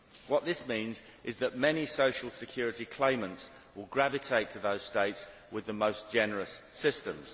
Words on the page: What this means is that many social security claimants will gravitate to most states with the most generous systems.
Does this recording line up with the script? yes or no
no